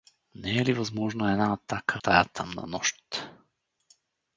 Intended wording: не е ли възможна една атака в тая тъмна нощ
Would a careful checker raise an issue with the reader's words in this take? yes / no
yes